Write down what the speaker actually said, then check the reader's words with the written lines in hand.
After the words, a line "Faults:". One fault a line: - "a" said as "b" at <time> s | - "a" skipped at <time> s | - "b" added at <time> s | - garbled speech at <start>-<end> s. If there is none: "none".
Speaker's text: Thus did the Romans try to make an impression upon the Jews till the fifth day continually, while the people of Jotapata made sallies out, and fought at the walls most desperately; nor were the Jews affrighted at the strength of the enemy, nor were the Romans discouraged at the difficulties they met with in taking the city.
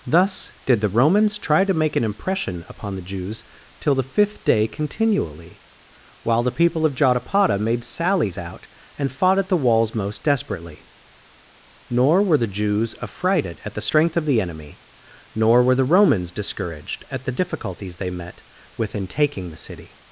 Thus did the Romans try to make an impression upon the Jews till the fifth day continually, while the people of Jotapata made sallies out, and fought at the walls most desperately; nor were the Jews affrighted at the strength of the enemy, nor were the Romans discouraged at the difficulties they met with in taking the city.
Faults:
none